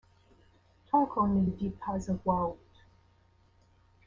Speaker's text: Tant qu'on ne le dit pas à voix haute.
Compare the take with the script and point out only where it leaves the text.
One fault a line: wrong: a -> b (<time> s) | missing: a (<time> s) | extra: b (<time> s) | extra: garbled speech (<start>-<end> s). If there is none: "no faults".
no faults